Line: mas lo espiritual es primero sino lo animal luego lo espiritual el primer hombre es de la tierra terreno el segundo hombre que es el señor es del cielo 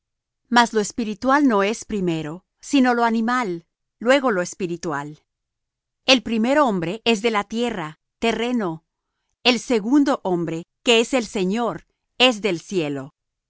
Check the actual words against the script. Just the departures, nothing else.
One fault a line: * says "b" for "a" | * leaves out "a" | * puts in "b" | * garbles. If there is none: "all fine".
* puts in "no"